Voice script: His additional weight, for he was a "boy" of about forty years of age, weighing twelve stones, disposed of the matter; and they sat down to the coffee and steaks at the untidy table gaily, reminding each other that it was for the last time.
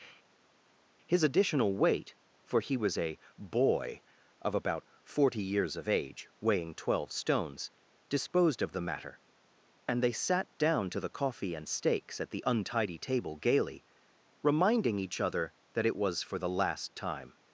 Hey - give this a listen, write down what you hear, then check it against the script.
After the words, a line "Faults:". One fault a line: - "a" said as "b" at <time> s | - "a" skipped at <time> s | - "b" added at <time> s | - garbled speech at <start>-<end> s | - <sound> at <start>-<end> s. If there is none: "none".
His additional weight, for he was a "boy" of about forty years of age, weighing twelve stones, disposed of the matter; and they sat down to the coffee and steaks at the untidy table gaily, reminding each other that it was for the last time.
Faults:
none